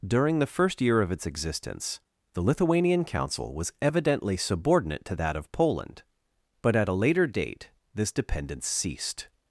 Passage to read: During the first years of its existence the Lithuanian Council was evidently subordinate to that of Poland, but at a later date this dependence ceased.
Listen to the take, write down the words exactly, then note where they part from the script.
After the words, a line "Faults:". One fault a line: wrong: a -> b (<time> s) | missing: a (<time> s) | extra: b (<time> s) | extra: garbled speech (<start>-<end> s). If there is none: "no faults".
During the first year of its existence the Lithuanian Council was evidently subordinate to that of Poland, but at a later date this dependence ceased.
Faults:
wrong: years -> year (0.8 s)